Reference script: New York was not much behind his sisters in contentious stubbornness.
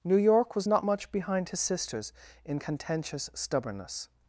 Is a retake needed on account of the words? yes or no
no